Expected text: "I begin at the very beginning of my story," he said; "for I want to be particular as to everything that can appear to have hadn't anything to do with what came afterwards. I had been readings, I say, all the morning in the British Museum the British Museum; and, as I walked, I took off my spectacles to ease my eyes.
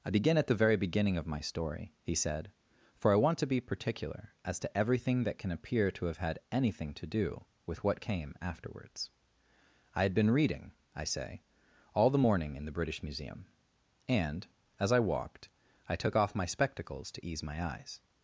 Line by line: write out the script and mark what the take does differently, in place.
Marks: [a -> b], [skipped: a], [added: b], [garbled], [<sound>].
"I begin at the very beginning of my story," he said; "for I want to be particular as to everything that can appear to have [hadn't -> had] anything to do with what came afterwards. I had been [readings, -> reading] I say, all the morning in the British Museum [skipped: the British Museum;] and, as I walked, I took off my spectacles to ease my eyes.